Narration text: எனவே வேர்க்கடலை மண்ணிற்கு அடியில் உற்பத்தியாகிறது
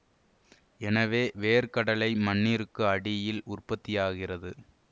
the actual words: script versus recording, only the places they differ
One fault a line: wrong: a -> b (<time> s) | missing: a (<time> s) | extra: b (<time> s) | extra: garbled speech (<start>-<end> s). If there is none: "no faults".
no faults